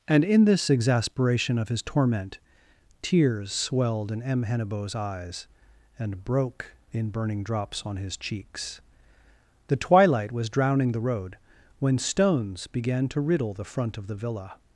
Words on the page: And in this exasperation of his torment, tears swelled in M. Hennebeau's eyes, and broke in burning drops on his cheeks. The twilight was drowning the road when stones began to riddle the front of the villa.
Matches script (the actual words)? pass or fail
pass